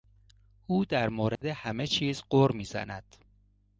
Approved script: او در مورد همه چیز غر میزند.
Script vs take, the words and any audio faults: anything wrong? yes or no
yes